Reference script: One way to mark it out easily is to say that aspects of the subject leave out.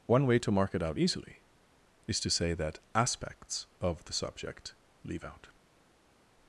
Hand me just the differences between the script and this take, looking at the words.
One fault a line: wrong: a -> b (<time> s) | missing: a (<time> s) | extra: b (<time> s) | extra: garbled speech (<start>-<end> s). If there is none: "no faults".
no faults